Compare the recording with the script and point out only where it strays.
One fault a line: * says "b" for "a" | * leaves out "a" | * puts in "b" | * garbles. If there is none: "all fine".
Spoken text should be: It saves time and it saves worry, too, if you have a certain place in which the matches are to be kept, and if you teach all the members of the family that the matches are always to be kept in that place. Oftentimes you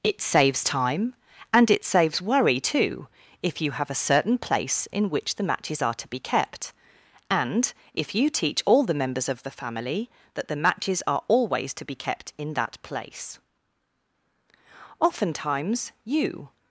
all fine